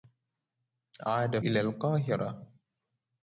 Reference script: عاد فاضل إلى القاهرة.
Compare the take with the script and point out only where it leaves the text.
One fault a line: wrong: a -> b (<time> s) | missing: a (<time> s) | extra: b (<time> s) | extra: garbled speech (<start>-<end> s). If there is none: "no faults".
missing: فاضل (1.4 s)